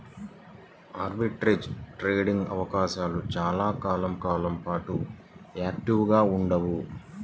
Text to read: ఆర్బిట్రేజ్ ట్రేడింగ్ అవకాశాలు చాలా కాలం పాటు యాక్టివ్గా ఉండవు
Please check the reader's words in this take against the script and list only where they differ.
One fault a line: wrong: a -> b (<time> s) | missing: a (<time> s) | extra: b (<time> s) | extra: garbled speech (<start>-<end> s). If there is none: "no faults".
extra: కాలం (4.2 s)